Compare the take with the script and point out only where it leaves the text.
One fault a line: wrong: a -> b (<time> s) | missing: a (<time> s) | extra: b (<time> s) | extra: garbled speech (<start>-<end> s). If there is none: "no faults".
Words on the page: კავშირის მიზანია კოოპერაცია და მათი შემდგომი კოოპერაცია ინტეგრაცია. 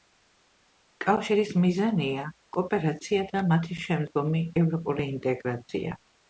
wrong: კოოპერაცია -> ევროპული (4.6 s)